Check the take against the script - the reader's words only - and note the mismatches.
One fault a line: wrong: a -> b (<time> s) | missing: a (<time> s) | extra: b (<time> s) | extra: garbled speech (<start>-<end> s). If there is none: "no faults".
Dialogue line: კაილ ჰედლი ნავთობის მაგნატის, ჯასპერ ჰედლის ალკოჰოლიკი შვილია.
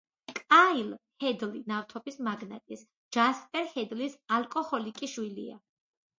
no faults